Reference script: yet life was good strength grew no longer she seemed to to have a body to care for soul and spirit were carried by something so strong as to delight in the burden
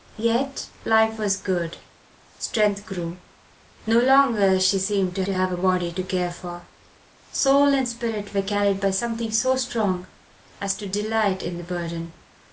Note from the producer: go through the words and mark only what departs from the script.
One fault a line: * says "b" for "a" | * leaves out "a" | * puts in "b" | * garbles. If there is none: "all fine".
all fine